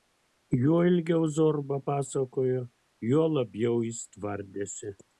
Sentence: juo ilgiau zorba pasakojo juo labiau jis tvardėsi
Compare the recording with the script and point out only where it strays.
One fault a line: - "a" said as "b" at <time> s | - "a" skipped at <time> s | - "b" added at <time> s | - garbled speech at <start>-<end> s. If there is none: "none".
none